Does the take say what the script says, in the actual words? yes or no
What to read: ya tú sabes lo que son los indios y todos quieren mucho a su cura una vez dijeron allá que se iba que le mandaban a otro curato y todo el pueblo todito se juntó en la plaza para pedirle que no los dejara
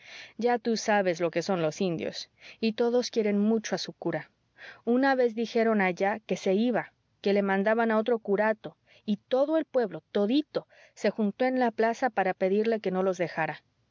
yes